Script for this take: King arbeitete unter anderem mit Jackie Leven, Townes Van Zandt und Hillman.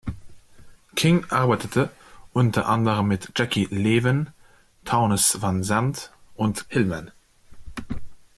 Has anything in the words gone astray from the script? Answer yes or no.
no